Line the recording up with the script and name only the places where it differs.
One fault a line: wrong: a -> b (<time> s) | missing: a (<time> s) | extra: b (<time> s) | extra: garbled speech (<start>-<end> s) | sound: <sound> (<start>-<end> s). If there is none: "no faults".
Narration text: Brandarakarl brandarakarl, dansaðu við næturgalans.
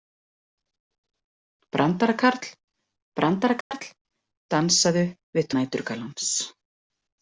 sound: dropout (3.6-3.7 s)